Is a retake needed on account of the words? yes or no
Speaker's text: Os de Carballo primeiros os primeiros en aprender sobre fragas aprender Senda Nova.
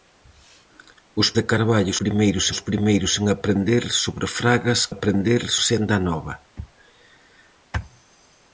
no